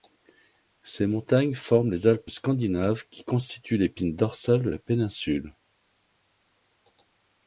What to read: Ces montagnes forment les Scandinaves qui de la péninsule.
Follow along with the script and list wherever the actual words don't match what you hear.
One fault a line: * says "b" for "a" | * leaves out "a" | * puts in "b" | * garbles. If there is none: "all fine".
* puts in "Alpes"
* puts in "constituent l'épine dorsale"